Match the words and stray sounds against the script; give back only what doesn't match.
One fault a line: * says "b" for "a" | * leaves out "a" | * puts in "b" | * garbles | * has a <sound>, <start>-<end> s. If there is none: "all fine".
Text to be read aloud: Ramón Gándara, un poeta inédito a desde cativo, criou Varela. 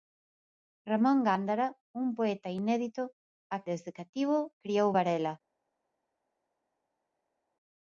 all fine